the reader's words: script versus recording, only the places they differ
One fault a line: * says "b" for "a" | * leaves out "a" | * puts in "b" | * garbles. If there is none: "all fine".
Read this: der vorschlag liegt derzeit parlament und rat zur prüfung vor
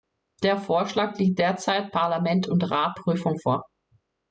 * leaves out "zur"